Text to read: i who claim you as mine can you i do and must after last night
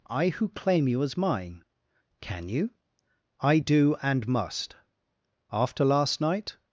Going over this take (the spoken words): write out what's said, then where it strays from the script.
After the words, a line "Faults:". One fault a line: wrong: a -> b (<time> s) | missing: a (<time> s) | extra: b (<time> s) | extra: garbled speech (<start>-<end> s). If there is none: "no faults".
i who claim you as mine can you i do and must after last night
Faults:
no faults